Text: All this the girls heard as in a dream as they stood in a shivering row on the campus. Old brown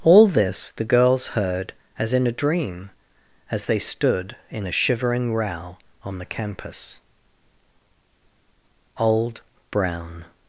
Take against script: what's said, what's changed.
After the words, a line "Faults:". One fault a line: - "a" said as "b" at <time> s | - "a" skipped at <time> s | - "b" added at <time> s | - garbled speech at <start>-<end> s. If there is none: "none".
All this the girls heard as in a dream as they stood in a shivering row on the campus. Old brown
Faults:
none